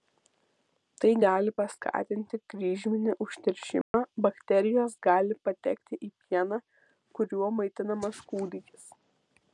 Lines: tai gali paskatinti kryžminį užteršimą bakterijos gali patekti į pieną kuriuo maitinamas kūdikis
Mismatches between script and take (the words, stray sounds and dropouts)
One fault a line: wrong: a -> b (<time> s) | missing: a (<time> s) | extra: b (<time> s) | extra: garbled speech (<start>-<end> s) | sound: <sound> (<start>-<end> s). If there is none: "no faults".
sound: dropout (3.8-3.9 s)